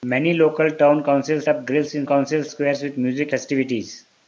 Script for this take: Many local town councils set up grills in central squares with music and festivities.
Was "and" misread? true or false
true